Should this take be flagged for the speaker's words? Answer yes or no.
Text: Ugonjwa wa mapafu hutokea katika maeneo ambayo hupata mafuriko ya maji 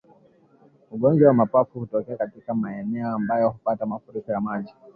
no